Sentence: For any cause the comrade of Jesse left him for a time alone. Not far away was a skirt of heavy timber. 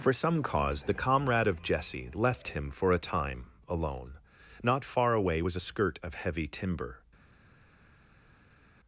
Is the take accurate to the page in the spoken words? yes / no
no